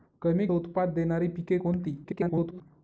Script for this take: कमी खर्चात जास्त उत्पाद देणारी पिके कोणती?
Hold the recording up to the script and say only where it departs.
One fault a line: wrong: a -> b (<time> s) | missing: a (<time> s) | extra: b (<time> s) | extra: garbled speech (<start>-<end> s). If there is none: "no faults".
missing: खर्चात जास्त (0.5 s)
extra: garbled speech (2.0-2.6 s)